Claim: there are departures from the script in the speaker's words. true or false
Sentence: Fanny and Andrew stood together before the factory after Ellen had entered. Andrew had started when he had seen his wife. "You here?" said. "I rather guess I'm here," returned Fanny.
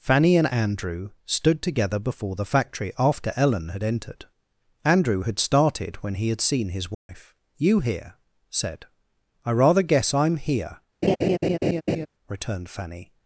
false